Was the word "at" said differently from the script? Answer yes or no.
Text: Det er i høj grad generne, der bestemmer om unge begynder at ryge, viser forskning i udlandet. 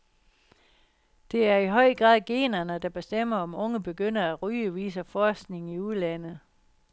no